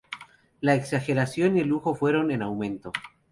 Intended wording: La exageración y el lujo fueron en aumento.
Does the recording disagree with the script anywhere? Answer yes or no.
no